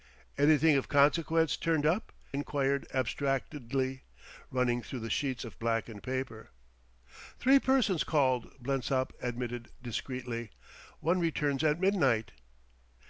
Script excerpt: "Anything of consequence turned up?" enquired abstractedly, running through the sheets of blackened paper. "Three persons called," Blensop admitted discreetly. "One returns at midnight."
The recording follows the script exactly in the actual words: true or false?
true